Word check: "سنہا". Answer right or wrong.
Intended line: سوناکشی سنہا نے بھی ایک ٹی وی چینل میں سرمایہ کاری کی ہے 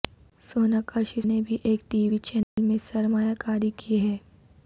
wrong